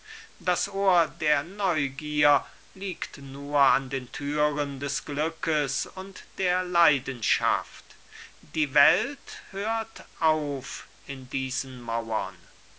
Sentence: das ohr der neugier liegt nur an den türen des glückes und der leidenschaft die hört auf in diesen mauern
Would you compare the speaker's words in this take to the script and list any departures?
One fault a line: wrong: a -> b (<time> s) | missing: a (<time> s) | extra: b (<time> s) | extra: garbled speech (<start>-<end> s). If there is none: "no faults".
extra: welt (8.7 s)